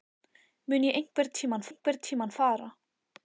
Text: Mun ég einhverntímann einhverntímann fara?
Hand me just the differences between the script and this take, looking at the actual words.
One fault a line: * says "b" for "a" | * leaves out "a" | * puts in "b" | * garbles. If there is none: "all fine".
all fine